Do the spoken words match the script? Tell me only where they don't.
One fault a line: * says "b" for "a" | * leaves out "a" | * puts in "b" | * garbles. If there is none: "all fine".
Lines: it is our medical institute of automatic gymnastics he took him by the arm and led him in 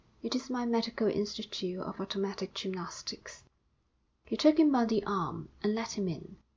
* says "my" for "our"